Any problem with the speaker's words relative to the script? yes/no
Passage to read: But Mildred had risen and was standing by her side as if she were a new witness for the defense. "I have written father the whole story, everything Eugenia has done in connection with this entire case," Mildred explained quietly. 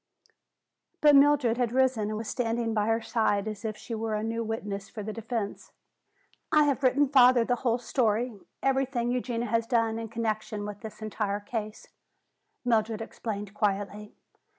no